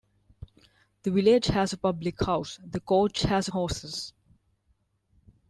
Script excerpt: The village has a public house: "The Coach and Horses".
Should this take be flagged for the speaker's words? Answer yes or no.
yes